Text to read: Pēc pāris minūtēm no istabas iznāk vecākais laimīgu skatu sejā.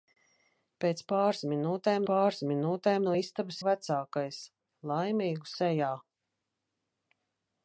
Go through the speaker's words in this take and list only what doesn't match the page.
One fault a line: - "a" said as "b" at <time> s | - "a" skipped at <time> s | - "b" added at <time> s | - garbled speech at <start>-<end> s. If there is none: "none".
- "pāris minūtēm" added at 2.1 s
- "iznāk" skipped at 3.6 s
- "skatu" skipped at 5.5 s